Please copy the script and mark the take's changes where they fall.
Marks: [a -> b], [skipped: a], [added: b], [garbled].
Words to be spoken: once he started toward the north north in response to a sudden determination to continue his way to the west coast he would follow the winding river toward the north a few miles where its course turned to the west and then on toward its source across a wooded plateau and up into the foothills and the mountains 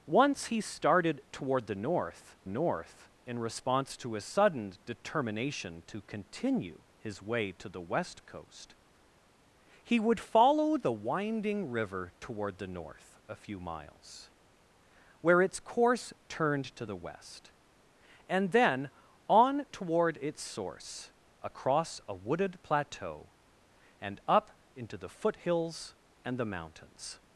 once he started toward the north north in response to a sudden determination to continue his way to the west coast he would follow the winding river toward the north a few miles where its course turned to the west and then on toward its source across a wooded plateau and up into the foothills and the mountains